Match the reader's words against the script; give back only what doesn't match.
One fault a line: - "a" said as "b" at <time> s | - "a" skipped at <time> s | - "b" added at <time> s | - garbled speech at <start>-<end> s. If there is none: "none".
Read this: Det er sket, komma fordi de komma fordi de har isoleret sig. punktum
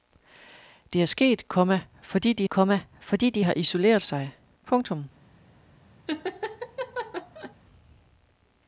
none